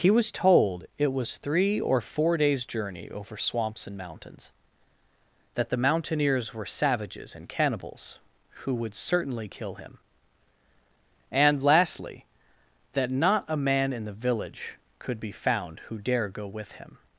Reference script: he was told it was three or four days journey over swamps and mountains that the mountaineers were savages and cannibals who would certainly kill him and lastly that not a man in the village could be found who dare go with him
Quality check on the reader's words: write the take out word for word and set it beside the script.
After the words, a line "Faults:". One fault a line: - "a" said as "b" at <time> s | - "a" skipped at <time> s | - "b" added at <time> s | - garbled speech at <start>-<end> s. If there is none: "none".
he was told it was three or four days journey over swamps and mountains that the mountaineers were savages and cannibals who would certainly kill him and lastly that not a man in the village could be found who dare go with him
Faults:
none